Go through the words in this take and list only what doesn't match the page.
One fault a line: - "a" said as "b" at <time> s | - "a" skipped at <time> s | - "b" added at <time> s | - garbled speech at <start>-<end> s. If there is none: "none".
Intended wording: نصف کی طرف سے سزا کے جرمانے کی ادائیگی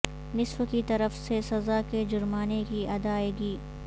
none